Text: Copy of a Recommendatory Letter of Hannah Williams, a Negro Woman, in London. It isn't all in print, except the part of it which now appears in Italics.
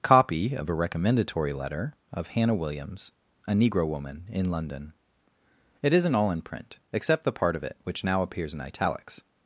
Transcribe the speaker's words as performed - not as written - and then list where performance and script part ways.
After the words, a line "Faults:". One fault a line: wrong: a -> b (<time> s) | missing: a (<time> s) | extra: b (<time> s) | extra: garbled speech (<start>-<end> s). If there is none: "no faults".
Copy of a Recommendatory Letter of Hannah Williams, a Negro Woman, in London. It isn't all in print, except the part of it which now appears in Italics.
Faults:
no faults